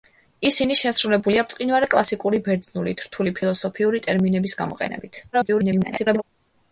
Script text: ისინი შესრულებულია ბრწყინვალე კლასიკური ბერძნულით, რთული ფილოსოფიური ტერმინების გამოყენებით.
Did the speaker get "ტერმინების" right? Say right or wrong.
right